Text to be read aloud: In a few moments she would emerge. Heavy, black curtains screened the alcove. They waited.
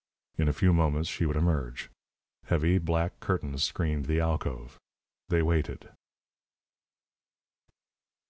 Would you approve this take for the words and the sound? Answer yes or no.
yes